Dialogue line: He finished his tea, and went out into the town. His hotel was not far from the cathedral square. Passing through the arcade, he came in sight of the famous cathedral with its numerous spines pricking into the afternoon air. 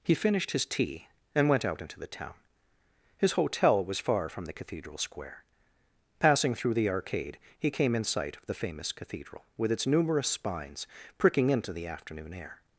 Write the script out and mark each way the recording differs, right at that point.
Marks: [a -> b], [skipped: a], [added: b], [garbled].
He finished his tea, and went out into the town. His hotel was [skipped: not] far from the cathedral square. Passing through the arcade, he came in sight of the famous cathedral with its numerous spines pricking into the afternoon air.